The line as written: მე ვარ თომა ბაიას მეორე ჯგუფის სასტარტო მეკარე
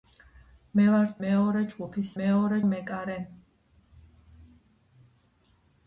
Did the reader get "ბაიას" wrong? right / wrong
wrong